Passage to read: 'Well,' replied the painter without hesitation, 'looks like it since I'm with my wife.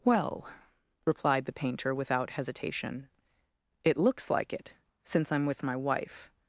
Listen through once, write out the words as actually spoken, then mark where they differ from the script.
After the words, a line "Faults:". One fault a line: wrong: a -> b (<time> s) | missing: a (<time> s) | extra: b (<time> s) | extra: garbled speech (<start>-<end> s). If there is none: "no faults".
'Well,' replied the painter without hesitation, 'it looks like it since I'm with my wife.
Faults:
extra: it (3.8 s)